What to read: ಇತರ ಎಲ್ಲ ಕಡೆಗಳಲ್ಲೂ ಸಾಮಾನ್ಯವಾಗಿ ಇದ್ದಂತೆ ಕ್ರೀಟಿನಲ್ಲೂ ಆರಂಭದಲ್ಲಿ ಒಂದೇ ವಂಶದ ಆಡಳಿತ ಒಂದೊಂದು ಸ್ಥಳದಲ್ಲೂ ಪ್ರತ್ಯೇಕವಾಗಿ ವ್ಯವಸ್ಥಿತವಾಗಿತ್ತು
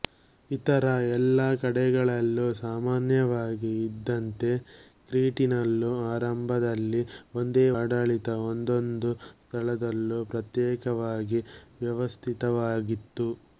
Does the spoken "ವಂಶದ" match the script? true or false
false